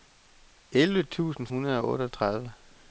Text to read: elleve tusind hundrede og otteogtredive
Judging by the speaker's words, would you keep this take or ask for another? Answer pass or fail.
pass